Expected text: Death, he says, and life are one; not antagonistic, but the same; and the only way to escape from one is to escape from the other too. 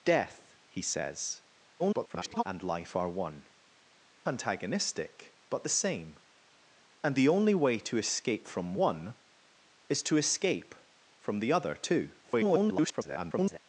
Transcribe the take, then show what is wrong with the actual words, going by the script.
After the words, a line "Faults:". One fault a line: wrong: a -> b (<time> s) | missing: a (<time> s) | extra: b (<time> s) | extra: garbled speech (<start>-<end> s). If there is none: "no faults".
Death, he says, [garbled] and life are one; antagonistic, but the same; and the only way to escape from one is to escape from the other too. [garbled]
Faults:
extra: garbled speech (1.8-2.4 s)
missing: not (3.5 s)
extra: garbled speech (12.2-13.6 s)